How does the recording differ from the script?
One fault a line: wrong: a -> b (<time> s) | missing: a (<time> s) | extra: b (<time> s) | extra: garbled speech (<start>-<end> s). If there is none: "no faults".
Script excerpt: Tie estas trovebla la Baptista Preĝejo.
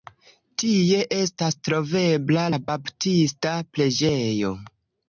no faults